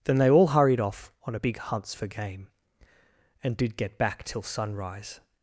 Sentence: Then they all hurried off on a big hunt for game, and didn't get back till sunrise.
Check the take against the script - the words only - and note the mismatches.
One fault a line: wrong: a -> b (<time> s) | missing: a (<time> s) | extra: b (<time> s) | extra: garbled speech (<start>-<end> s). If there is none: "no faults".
wrong: hunt -> hunts (1.6 s)
wrong: didn't -> did (3.6 s)